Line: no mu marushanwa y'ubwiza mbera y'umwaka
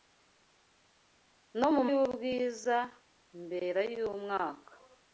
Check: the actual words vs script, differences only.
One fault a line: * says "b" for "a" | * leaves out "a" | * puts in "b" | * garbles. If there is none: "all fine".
* leaves out "marushanwa"